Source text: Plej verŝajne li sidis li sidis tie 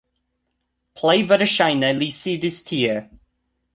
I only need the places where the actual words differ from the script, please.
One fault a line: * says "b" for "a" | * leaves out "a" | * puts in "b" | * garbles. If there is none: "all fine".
* leaves out "li sidis"